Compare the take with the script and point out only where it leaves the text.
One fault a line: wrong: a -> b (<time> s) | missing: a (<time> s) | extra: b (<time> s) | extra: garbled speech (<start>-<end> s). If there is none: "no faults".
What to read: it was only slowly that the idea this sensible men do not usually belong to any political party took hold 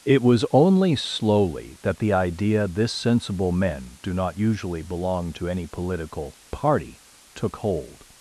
no faults